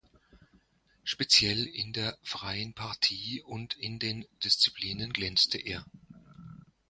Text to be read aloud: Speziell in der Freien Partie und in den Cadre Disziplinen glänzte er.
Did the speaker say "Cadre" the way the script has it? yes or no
no